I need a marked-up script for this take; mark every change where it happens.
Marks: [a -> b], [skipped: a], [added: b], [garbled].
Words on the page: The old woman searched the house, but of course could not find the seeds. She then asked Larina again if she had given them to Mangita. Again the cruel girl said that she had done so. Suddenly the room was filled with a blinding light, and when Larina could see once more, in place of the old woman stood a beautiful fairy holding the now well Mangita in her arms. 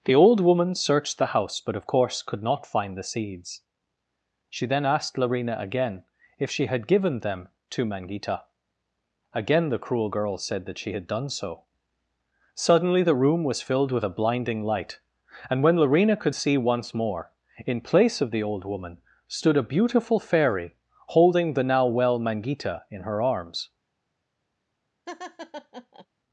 The old woman searched the house, but of course could not find the seeds. She then asked Larina again if she had given them to Mangita. Again the cruel girl said that she had done so. Suddenly the room was filled with a blinding light, and when Larina could see once more, in place of the old woman stood a beautiful fairy holding the now well Mangita in her arms.